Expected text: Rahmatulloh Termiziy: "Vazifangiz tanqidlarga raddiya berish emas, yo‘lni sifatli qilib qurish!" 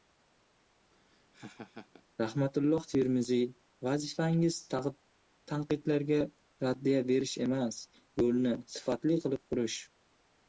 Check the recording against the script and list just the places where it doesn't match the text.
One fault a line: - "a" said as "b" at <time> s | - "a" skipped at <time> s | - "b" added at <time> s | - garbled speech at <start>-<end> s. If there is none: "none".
none